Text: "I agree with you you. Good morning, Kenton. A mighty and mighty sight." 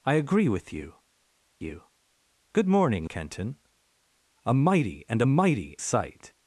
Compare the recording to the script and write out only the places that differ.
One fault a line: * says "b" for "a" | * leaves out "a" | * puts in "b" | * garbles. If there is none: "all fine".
all fine